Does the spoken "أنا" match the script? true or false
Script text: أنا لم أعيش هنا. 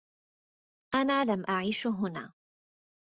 true